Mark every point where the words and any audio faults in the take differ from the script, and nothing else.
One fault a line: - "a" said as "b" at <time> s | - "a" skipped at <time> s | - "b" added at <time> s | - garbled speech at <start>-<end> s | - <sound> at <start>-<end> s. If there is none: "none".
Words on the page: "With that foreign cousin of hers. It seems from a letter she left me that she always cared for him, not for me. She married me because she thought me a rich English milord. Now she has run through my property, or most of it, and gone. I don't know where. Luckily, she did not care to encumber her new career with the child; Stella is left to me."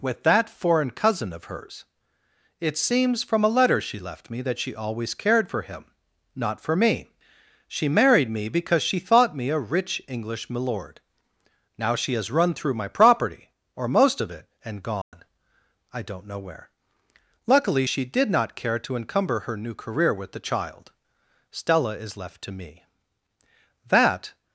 - dropout at 15.0-15.1 s
- "That" added at 23.9 s